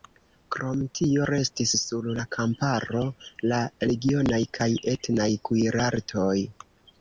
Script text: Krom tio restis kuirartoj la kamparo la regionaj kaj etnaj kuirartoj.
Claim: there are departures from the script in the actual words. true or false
true